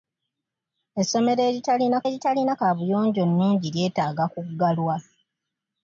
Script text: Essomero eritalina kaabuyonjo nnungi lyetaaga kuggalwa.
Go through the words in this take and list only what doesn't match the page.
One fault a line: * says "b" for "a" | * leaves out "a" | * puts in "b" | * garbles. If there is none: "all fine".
* puts in "eritalina"